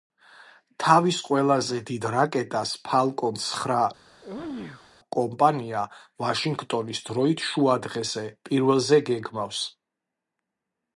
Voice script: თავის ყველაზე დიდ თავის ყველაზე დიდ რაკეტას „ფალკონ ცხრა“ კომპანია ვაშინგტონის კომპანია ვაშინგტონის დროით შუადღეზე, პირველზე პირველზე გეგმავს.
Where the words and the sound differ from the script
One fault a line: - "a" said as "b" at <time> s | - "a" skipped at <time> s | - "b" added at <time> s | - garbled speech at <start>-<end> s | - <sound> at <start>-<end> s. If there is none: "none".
- "თავის ყველაზე დიდ" skipped at 2.1 s
- sneeze at 4.1-4.9 s
- "კომპანია ვაშინგტონის" skipped at 7.0 s
- "პირველზე" skipped at 9.0 s